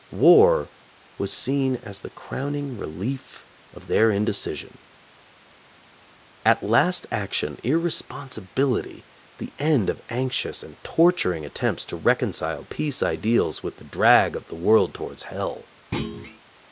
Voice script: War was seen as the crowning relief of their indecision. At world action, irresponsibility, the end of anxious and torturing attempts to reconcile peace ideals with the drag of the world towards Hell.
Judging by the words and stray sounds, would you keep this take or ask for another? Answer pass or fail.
fail